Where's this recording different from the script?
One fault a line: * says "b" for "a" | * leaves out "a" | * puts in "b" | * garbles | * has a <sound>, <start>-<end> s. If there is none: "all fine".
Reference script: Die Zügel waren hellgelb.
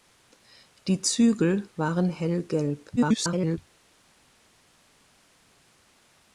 * garbles